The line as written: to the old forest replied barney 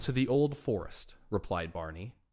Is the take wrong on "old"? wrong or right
right